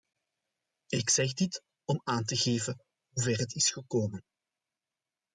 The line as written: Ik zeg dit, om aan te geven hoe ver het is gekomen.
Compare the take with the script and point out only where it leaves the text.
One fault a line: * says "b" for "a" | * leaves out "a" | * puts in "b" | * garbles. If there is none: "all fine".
all fine